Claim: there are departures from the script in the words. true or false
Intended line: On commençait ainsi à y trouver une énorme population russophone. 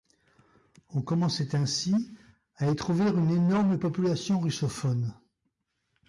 false